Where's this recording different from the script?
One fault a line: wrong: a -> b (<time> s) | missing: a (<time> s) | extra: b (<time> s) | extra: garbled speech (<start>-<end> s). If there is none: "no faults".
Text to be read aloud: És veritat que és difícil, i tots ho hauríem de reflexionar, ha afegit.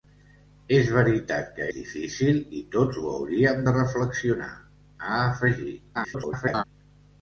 missing: és (1.6 s)
extra: garbled speech (5.9-6.6 s)